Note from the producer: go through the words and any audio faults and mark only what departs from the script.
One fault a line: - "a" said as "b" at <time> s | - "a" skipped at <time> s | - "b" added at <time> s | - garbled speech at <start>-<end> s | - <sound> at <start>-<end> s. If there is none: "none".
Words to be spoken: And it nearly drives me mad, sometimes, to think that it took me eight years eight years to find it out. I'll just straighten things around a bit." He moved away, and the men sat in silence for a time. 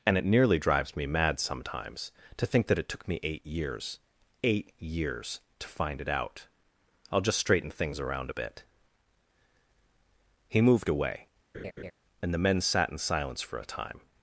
- laugh at 11.5-11.9 s